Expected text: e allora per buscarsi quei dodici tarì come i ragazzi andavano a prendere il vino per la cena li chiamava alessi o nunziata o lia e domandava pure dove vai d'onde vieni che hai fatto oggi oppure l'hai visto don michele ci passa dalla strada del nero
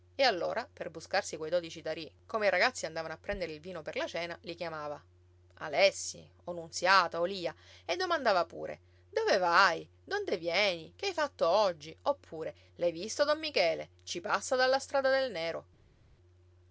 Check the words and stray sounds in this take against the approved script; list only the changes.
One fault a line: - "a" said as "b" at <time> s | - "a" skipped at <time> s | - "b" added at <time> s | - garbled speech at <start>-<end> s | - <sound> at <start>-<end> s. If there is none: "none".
none